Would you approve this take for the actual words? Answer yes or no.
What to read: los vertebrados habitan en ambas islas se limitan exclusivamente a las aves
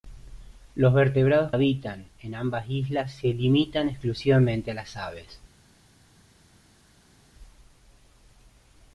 yes